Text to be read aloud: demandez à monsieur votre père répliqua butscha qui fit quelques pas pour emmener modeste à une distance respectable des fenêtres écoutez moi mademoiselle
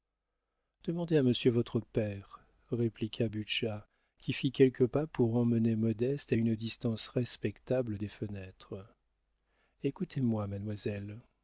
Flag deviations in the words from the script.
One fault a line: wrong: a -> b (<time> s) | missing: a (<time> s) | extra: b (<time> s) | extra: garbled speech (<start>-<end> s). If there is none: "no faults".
no faults